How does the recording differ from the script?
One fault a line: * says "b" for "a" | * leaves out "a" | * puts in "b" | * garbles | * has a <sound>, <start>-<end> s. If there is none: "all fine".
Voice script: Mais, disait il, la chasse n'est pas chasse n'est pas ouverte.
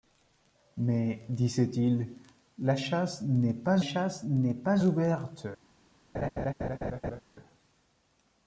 * has a laugh, 6.1-7.2 s